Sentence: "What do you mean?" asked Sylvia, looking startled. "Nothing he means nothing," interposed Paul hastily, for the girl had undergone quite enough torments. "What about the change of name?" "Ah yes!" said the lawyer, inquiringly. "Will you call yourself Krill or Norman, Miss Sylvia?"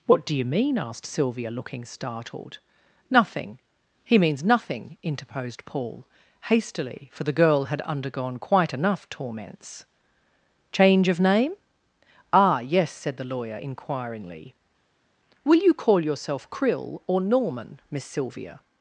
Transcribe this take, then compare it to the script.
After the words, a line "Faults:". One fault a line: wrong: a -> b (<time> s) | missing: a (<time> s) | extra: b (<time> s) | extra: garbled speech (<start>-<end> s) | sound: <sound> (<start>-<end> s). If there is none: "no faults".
"What do you mean?" asked Sylvia, looking startled. "Nothing he means nothing," interposed Paul hastily, for the girl had undergone quite enough torments. "change of name?" "Ah yes!" said the lawyer, inquiringly. "Will you call yourself Krill or Norman, Miss Sylvia?"
Faults:
missing: What about the (9.8 s)